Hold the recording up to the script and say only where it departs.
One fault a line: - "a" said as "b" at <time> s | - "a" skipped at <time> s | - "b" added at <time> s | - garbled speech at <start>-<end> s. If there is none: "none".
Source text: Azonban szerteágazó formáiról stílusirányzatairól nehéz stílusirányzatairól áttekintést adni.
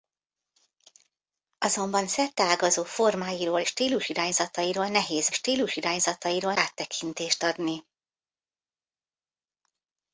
none